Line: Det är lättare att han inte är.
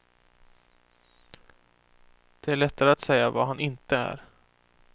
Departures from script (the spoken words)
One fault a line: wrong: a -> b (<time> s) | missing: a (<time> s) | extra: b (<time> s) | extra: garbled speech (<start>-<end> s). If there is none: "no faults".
extra: säga vad (3.0 s)